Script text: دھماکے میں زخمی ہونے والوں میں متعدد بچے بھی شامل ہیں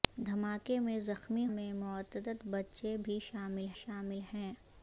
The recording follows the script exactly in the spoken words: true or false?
false